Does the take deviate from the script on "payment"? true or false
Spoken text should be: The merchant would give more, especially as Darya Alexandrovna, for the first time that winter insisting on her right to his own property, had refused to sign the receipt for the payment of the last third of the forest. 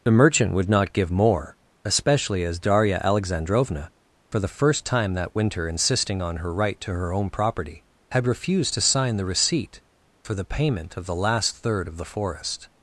false